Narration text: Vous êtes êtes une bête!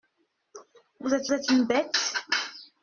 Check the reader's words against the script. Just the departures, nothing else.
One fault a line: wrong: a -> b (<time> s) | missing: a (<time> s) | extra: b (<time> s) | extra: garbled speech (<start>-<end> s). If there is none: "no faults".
no faults